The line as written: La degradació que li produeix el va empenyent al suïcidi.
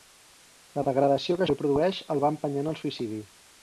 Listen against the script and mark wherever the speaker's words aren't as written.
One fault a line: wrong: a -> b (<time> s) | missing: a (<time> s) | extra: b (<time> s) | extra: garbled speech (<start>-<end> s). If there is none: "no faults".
no faults